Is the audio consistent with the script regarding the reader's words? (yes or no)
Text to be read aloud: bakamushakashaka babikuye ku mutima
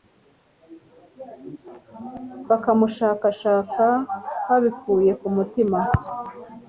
yes